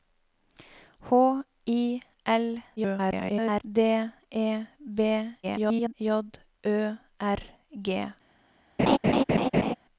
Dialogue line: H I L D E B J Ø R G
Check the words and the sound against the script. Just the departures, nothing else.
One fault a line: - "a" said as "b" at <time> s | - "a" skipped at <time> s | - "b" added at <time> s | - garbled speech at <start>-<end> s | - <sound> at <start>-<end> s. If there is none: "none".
- garbled speech at 2.8-3.6 s
- garbled speech at 5.4-5.9 s
- laugh at 8.8-9.7 s